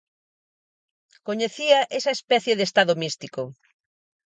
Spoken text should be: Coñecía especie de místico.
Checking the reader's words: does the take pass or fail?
fail